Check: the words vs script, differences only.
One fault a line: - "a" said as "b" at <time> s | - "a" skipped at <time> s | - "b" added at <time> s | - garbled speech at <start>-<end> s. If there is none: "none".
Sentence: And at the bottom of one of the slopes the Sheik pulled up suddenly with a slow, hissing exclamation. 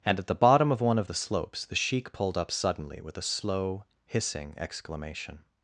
none